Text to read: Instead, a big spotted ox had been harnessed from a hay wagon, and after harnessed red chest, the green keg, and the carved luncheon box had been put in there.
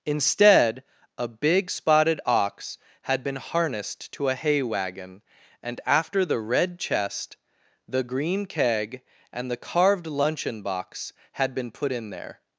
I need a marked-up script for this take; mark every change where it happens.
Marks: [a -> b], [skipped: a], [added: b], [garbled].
Instead, a big spotted ox had been harnessed [from -> to] a hay wagon, and after [harnessed -> the] red chest, the green keg, and the carved luncheon box had been put in there.